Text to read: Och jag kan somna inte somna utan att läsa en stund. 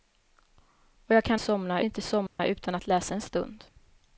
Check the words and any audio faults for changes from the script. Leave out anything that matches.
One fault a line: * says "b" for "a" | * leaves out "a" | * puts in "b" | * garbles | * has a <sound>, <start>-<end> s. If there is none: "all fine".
* has a dropout, 2.3-2.4 s